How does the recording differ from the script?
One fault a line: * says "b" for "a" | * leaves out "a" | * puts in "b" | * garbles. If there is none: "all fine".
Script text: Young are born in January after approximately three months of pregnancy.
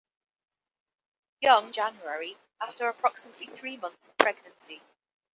* leaves out "are born in"